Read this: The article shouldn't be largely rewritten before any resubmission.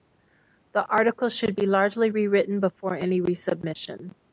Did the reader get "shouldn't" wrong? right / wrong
wrong